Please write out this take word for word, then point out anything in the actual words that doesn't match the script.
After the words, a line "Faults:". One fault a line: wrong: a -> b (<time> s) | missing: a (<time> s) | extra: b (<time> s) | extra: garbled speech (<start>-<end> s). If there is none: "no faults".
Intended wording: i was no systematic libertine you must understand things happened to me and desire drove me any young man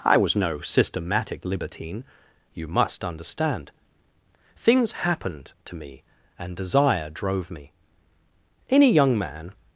i was no systematic libertine you must understand things happened to me and desire drove me any young man
Faults:
no faults